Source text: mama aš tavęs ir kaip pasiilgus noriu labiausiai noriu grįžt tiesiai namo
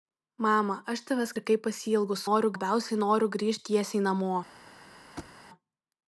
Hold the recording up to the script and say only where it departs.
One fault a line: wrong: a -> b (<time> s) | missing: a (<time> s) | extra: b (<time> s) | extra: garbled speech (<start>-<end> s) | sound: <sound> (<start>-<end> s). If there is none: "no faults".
sound: thud (5.2-5.4 s)